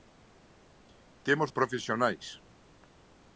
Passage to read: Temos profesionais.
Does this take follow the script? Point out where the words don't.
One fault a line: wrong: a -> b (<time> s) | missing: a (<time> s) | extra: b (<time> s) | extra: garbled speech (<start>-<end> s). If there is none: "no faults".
no faults